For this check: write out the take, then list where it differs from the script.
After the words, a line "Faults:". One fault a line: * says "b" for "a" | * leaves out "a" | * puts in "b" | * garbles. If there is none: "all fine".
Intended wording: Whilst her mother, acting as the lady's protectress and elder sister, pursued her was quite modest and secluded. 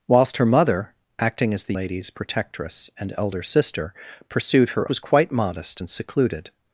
Whilst her mother, acting as the lady's protectress and elder sister, pursued her was quite modest and secluded.
Faults:
all fine